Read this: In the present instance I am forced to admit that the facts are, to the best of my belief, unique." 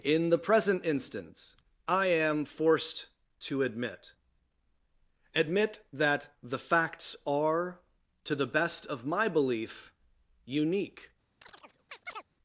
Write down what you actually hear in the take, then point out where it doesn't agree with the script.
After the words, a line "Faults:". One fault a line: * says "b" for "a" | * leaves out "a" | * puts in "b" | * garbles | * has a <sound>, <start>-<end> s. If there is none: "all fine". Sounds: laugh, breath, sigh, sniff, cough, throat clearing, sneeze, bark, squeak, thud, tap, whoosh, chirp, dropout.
In the present instance I am forced to admit admit that the facts are, to the best of my belief, unique."
Faults:
* puts in "admit"
* has a chirp, 11.4-12.2 s